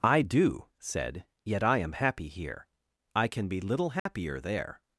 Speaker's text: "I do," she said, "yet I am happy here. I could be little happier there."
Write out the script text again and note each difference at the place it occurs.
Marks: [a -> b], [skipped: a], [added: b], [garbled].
"I do," [skipped: she] said, "yet I am happy here. I [could -> can] be little happier there."